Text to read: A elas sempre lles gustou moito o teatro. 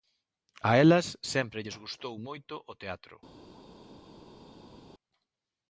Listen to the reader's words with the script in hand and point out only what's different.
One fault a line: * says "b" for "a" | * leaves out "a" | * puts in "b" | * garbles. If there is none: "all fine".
all fine